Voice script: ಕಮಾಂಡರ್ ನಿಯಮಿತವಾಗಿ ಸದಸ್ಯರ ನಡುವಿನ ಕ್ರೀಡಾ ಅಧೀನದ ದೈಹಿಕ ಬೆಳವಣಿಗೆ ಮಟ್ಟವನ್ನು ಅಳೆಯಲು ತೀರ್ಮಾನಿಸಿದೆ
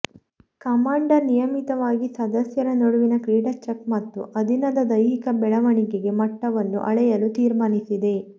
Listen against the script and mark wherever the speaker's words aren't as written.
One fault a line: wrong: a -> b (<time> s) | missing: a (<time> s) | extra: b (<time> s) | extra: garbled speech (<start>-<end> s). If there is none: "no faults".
extra: ಚೆಕ್ ಮತ್ತು (3.6 s)